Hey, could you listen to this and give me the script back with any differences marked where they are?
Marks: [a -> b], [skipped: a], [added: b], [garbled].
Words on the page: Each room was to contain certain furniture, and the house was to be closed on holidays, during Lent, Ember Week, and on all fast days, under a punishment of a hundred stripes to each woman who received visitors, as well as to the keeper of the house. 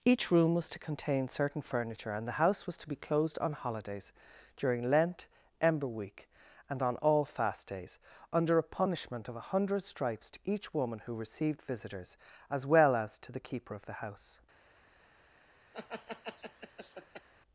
Each room was to contain certain furniture, and the house was to be closed on holidays, during Lent, Ember Week, and on all fast days, under a punishment of a hundred stripes to each woman who received visitors, as well as to the keeper of the house.